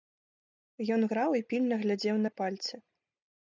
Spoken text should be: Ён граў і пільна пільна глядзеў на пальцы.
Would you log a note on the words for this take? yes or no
yes